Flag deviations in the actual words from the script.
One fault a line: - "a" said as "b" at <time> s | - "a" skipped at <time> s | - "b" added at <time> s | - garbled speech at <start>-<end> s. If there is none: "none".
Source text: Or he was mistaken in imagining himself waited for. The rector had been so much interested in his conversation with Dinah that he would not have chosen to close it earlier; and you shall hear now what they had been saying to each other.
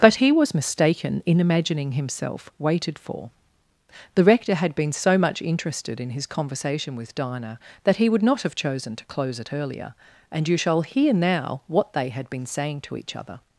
- "Or" said as "But" at 0.0 s